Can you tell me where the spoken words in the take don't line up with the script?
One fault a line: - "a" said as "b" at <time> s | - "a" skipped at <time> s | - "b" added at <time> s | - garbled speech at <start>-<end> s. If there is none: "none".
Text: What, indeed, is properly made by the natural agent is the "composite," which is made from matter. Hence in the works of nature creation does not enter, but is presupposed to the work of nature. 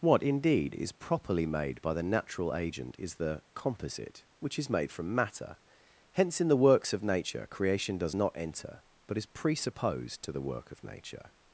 none